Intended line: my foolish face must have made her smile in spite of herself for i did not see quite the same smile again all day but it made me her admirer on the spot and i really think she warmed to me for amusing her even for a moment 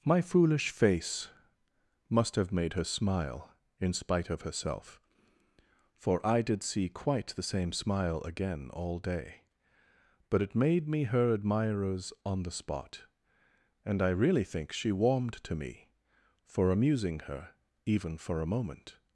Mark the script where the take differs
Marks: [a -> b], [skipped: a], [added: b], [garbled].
my foolish face must have made her smile in spite of herself for i did [skipped: not] see quite the same smile again all day but it made me her [admirer -> admirers] on the spot and i really think she warmed to me for amusing her even for a moment